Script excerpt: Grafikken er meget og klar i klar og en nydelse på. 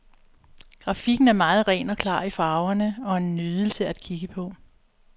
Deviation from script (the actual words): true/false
true